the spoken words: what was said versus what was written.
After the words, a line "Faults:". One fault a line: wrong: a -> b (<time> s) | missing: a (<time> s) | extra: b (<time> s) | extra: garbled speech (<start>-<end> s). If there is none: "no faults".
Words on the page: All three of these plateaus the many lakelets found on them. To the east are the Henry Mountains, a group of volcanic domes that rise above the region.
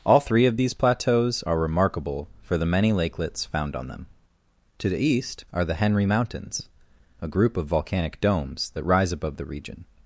All three of these plateaus are remarkable for the many lakelets found on them. To the east are the Henry Mountains, a group of volcanic domes that rise above the region.
Faults:
extra: are remarkable for (1.4 s)